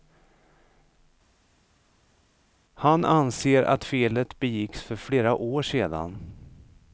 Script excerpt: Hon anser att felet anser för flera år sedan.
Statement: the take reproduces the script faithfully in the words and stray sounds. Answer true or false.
false